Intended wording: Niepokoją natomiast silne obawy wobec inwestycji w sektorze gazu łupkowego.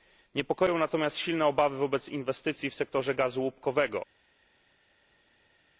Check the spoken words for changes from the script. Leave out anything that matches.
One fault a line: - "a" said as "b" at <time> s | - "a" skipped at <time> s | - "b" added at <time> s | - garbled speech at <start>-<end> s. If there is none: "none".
none